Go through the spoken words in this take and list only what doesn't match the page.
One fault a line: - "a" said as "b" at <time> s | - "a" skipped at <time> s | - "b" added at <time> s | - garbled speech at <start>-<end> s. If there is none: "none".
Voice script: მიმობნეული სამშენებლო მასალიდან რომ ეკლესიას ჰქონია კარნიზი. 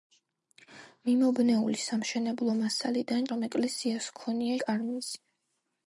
none